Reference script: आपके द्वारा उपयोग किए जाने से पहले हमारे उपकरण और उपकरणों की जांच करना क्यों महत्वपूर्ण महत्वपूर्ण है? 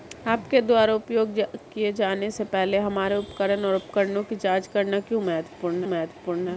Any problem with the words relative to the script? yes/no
no